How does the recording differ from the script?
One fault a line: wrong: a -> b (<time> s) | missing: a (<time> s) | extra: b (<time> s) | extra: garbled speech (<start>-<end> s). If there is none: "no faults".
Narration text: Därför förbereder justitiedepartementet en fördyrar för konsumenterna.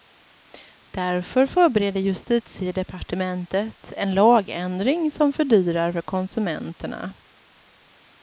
extra: lagändring som (4.1 s)